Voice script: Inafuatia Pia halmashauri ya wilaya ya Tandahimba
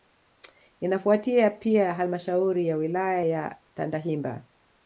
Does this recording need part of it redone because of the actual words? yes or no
no